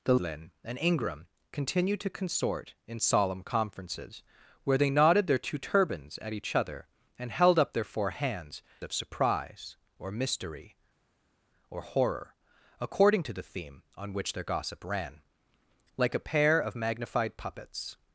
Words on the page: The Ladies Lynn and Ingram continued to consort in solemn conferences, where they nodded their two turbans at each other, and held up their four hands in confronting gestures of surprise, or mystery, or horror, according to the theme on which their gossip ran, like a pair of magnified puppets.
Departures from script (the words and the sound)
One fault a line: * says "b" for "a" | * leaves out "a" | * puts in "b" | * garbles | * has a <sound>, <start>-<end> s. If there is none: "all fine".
* leaves out "Ladies"
* leaves out "in confronting gestures"